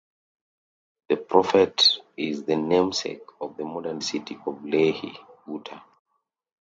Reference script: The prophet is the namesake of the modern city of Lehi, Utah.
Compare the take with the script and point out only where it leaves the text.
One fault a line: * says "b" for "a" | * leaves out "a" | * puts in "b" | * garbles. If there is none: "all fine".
all fine